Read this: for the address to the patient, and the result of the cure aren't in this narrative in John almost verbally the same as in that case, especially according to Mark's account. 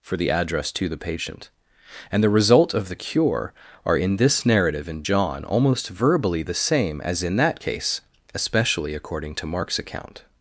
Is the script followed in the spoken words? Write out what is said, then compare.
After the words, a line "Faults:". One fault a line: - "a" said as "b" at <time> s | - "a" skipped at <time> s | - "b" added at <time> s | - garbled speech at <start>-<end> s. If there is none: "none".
for the address to the patient, and the result of the cure are in this narrative in John almost verbally the same as in that case, especially according to Mark's account.
Faults:
- "aren't" said as "are" at 3.9 s